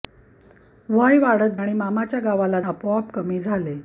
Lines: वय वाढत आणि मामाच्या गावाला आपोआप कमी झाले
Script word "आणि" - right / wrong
right